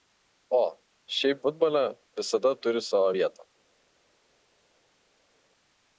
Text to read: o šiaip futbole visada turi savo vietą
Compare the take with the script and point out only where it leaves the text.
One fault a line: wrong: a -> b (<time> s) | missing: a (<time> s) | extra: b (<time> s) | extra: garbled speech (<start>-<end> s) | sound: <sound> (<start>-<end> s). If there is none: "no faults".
no faults